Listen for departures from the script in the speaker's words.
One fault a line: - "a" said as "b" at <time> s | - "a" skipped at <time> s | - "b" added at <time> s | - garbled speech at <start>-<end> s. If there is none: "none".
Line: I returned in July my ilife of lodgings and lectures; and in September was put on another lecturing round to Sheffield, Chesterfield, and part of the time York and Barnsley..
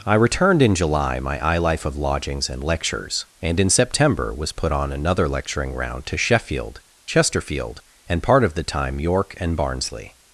none